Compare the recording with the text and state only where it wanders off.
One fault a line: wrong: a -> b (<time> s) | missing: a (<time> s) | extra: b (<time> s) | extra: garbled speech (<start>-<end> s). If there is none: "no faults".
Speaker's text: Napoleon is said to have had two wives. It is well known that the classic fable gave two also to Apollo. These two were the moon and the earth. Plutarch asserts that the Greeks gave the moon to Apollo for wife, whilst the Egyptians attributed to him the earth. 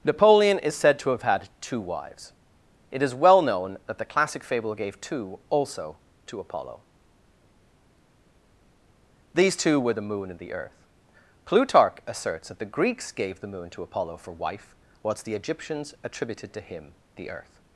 no faults